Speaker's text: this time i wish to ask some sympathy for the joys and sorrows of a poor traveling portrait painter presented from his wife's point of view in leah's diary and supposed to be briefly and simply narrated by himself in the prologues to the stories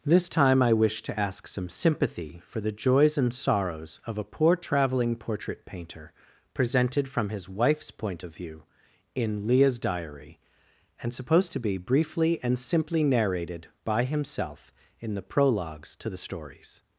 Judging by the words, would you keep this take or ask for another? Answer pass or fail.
pass